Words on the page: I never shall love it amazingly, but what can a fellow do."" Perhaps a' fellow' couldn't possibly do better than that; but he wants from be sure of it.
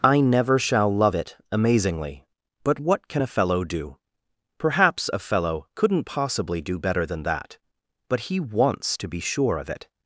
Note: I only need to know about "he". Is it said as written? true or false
true